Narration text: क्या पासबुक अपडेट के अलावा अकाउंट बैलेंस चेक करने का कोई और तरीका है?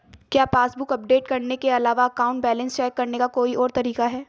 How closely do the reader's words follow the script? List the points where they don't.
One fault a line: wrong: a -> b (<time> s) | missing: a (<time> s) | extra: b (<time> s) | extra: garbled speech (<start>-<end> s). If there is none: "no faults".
extra: करने (1.3 s)